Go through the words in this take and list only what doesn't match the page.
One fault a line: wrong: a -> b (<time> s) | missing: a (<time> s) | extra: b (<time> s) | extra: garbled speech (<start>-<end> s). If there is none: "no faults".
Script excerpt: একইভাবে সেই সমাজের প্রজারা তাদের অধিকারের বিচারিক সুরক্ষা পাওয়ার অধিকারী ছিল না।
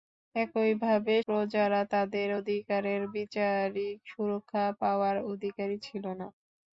missing: সেই সমাজের (1.1 s)